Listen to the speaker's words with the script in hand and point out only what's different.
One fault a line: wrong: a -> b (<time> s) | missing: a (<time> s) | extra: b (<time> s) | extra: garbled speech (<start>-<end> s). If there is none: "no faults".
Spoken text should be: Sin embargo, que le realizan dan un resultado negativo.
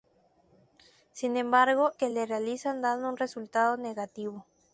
no faults